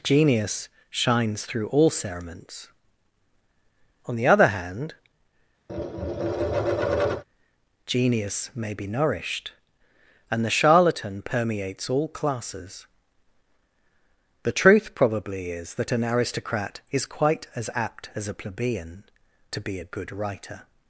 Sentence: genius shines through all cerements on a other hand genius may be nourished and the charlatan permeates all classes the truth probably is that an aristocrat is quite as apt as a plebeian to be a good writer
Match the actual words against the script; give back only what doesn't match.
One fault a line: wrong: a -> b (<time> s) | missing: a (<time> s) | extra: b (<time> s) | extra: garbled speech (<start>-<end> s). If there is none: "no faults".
wrong: a -> the (4.2 s)